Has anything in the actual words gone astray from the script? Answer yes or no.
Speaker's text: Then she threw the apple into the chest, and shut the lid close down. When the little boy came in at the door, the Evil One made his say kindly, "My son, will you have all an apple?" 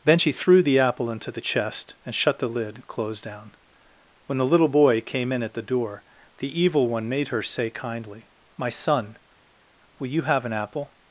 yes